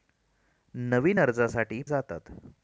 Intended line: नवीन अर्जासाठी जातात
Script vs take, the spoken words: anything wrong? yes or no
no